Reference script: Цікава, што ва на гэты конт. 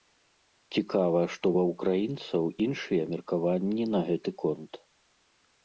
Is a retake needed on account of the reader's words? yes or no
yes